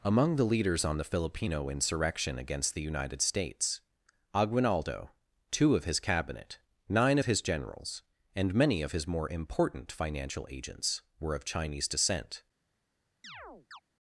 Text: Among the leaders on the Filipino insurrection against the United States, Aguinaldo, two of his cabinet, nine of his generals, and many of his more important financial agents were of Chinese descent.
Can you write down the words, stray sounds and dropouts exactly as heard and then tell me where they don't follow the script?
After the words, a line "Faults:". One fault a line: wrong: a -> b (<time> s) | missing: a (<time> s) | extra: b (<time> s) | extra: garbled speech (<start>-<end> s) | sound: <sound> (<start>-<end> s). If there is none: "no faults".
Among the leaders on the Filipino insurrection against the United States, Aguinaldo, two of his cabinet, nine of his generals, and many of his more important financial agents were of Chinese descent.
Faults:
sound: chirp (13.2-13.8 s)